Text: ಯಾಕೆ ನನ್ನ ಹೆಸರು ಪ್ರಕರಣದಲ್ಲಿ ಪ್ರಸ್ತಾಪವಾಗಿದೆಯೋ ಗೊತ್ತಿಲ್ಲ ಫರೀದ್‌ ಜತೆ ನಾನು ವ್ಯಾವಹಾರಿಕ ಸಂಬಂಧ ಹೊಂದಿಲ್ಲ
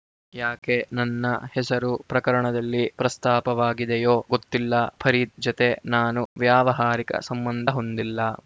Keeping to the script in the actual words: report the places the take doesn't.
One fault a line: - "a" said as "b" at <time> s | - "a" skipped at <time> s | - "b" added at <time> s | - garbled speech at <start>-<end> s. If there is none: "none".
none